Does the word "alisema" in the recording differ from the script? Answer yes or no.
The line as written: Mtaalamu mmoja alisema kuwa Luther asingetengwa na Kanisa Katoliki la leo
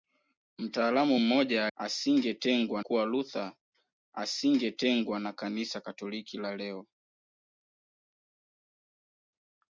yes